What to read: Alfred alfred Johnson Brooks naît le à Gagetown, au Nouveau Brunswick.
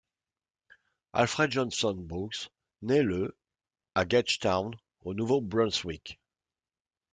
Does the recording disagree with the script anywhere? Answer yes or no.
yes